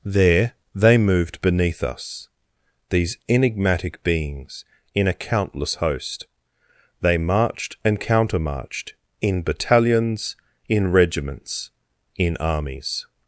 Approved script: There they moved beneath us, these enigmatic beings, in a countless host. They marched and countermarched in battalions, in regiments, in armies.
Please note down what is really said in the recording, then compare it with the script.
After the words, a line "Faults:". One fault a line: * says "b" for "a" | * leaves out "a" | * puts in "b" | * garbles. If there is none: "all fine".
There they moved beneath us, these enigmatic beings, in a countless host. They marched and countermarched in battalions, in regiments, in armies.
Faults:
all fine